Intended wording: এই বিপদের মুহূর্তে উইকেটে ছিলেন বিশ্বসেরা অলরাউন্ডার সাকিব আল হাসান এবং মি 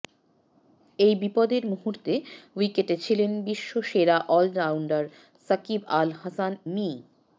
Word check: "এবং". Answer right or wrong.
wrong